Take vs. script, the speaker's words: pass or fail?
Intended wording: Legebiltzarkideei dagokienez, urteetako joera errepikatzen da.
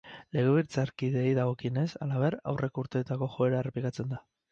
fail